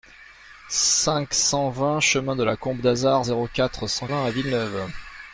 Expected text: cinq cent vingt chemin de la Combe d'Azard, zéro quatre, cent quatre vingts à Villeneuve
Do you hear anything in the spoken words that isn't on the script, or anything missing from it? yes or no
yes